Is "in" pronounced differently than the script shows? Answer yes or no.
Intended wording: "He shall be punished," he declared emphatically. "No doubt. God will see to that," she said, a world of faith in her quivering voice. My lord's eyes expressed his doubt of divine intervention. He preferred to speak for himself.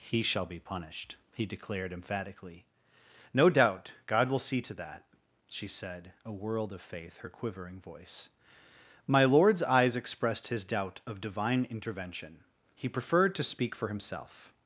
yes